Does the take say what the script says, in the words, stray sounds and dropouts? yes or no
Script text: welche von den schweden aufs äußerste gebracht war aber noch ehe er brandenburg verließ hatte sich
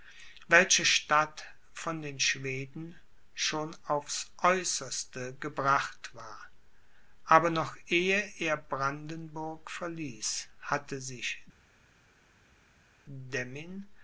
no